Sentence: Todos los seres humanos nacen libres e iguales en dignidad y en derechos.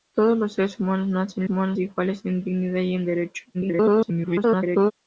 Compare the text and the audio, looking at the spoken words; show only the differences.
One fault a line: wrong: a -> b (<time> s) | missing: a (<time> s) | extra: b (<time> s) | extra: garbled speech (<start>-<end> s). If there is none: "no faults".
wrong: libres -> humanos (1.5 s)
extra: garbled speech (3.5-4.9 s)